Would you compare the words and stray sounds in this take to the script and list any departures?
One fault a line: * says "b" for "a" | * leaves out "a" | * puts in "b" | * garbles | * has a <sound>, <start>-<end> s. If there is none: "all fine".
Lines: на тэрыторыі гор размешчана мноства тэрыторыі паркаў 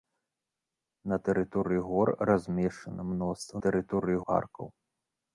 all fine